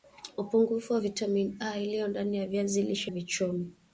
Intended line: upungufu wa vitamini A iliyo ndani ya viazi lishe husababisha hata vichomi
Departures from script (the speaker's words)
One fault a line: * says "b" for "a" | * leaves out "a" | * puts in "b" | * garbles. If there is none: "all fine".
* leaves out "husababisha hata"